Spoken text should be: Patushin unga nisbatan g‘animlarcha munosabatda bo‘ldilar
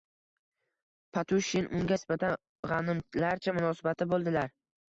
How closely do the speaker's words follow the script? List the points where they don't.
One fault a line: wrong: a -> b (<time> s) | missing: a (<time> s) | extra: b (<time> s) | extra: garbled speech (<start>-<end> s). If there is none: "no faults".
no faults